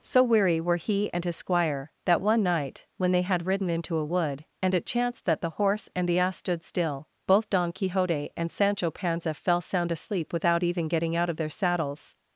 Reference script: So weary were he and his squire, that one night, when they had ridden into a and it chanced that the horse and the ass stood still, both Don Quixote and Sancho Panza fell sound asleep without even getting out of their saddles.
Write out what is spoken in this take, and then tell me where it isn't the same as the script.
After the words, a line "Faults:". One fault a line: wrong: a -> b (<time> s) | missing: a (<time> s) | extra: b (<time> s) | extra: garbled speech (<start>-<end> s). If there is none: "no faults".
So weary were he and his squire, that one night, when they had ridden into a wood, and it chanced that the horse and the ass stood still, both Don Quixote and Sancho Panza fell sound asleep without even getting out of their saddles.
Faults:
extra: wood (4.0 s)